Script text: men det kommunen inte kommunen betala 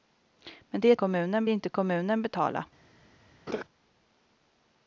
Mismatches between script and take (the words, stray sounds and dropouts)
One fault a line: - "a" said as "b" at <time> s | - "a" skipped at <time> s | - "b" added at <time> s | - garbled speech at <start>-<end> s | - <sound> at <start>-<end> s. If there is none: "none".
- laugh at 3.5-3.6 s